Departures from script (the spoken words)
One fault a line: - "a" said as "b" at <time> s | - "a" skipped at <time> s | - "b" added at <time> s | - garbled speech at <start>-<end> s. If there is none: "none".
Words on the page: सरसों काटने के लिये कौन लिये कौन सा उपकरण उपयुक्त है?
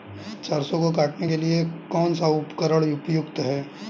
- "को" added at 0.8 s
- "लिये कौन" skipped at 2.1 s